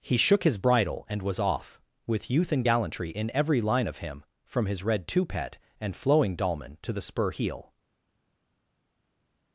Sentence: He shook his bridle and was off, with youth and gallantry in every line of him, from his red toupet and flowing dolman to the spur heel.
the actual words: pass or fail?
pass